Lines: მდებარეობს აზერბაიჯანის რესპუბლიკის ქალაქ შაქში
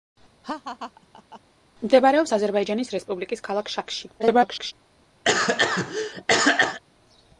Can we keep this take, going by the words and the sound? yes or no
no